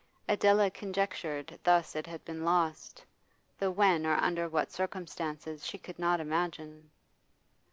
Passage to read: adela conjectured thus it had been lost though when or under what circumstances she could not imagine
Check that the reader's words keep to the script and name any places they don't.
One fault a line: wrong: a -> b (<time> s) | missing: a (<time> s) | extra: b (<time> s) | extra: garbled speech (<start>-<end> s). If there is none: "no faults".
no faults